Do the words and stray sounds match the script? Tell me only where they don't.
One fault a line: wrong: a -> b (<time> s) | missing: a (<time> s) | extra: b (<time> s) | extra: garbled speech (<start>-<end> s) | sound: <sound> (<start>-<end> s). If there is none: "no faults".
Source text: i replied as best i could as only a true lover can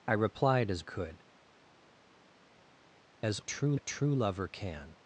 missing: best i (0.8 s)
wrong: only -> true (3.4 s)